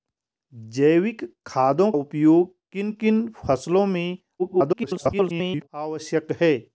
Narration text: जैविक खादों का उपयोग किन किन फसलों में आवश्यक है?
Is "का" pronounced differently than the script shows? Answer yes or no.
yes